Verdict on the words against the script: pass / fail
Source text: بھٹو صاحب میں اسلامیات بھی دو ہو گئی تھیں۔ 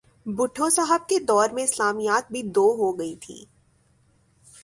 fail